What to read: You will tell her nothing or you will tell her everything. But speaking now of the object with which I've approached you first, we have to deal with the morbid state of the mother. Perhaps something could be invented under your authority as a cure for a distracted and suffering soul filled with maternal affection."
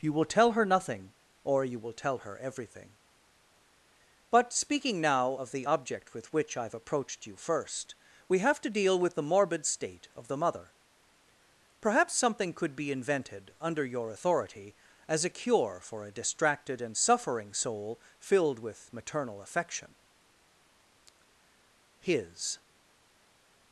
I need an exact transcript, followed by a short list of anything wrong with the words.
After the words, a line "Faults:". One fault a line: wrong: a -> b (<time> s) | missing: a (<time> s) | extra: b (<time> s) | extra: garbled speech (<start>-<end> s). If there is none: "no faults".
You will tell her nothing or you will tell her everything. But speaking now of the object with which I've approached you first, we have to deal with the morbid state of the mother. Perhaps something could be invented under your authority as a cure for a distracted and suffering soul filled with maternal affection." His
Faults:
extra: His (22.0 s)